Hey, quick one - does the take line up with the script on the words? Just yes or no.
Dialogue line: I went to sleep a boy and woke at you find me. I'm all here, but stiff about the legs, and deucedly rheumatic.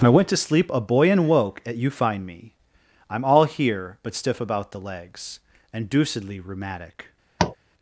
yes